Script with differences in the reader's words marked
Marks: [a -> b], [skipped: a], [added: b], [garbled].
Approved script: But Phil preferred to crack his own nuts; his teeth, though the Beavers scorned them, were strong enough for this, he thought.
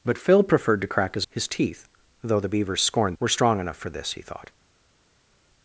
But Phil preferred to crack his [skipped: own nuts;] his teeth, though the Beavers scorned [skipped: them,] were strong enough for this, he thought.